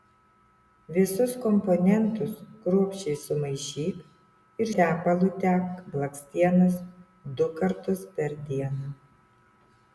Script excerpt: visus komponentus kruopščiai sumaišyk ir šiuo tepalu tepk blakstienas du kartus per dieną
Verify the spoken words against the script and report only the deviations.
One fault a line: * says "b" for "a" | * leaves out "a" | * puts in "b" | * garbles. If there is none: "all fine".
* leaves out "šiuo"